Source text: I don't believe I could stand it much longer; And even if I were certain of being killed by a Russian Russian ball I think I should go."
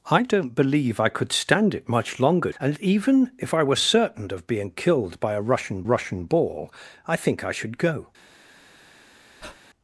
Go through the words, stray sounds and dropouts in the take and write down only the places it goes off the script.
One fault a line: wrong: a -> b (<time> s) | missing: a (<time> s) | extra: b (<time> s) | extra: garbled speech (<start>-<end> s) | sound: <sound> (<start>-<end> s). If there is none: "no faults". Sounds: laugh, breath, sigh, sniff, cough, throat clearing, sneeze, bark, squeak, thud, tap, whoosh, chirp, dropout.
sound: breath (9.4-9.6 s)